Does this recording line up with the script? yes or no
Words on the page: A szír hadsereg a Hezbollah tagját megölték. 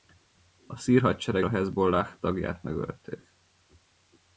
yes